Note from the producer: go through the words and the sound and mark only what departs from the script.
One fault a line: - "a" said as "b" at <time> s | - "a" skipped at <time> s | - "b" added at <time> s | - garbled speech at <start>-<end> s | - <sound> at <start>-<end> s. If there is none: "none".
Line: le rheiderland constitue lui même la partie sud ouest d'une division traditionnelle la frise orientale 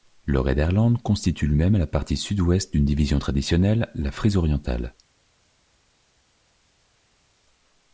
none